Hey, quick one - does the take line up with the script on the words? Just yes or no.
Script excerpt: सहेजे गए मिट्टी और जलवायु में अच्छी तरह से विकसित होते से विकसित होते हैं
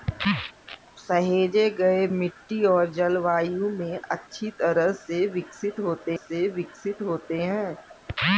yes